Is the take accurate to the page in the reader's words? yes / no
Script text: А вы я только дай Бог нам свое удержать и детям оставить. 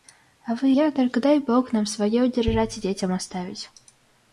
yes